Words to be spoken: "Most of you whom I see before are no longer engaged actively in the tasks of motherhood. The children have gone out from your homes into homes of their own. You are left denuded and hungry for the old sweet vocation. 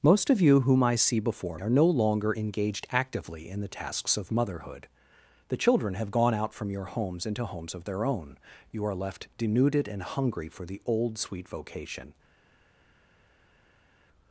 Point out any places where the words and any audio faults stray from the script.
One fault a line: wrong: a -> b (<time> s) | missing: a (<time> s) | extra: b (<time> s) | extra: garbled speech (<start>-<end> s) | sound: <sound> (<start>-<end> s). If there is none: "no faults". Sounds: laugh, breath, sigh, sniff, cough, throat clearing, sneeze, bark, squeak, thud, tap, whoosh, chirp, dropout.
no faults